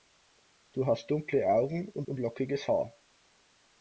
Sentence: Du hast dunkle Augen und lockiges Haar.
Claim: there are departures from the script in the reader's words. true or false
true